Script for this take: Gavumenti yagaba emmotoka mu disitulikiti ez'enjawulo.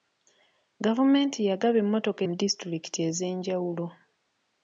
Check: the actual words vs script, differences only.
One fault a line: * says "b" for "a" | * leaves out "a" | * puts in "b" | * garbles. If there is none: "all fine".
all fine